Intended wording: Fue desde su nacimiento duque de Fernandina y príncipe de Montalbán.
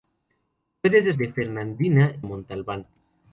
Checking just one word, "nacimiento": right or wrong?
wrong